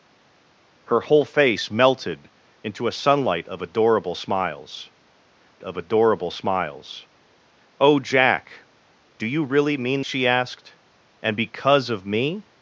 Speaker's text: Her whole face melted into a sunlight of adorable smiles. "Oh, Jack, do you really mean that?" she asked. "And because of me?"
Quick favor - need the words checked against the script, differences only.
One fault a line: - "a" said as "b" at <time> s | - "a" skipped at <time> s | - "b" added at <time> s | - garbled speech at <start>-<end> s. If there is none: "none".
- "of adorable smiles" added at 5.6 s
- "that" skipped at 10.0 s